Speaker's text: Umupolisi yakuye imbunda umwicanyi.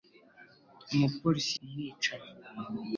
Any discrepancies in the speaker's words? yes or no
yes